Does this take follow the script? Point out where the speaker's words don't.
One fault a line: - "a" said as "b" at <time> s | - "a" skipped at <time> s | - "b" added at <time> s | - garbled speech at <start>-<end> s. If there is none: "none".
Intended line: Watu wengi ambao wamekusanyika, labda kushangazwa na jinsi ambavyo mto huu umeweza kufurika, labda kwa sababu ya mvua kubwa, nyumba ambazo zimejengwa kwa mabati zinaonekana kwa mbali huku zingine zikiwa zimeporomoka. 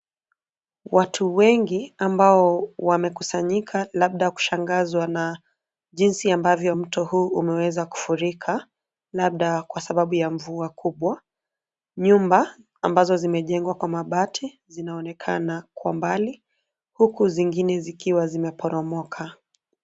none